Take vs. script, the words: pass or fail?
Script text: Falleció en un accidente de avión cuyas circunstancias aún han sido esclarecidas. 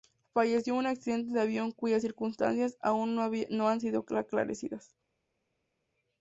fail